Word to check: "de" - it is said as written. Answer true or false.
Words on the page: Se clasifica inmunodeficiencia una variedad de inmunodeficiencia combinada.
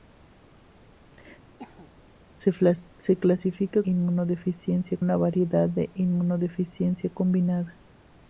true